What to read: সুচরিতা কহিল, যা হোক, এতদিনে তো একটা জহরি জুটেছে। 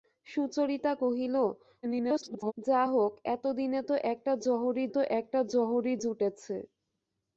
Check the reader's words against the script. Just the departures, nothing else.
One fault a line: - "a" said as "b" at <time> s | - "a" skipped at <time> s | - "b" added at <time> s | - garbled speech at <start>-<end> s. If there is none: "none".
- garbled speech at 1.8-2.5 s
- "তো একটা জহরি" added at 4.9 s